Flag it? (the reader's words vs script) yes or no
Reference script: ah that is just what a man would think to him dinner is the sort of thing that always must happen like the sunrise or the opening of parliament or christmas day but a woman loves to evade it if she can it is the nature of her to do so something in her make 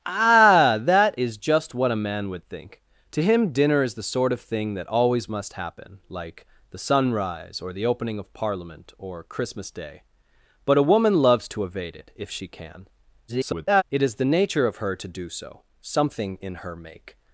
yes